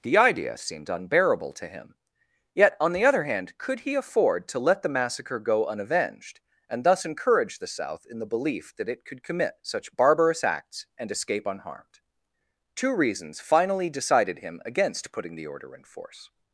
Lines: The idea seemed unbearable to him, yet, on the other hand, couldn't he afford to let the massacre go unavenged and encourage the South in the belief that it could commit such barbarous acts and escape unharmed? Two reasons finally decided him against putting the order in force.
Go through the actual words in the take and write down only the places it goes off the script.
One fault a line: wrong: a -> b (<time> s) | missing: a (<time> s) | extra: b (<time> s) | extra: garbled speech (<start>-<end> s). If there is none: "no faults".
wrong: couldn't -> could (3.6 s)
extra: thus (6.8 s)